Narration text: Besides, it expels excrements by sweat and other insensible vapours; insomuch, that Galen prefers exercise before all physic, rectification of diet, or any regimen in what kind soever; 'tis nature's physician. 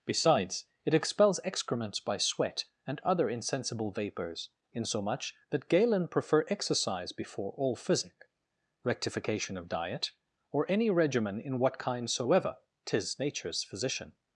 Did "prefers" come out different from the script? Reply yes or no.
yes